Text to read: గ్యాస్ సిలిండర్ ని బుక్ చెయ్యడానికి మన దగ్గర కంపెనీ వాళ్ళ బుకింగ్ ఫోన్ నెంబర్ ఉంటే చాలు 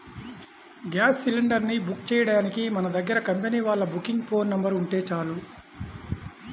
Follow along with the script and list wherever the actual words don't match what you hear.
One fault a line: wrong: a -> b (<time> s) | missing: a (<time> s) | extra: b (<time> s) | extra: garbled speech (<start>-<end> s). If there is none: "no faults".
no faults